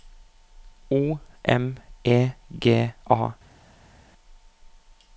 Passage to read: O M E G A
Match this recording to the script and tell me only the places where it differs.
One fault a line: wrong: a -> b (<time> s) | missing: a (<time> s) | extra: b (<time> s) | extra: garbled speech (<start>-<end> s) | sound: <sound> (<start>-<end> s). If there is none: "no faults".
no faults